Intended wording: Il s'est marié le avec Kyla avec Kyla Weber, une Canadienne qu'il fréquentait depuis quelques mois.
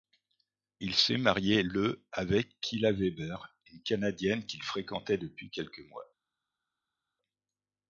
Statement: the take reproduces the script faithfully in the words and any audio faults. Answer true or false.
false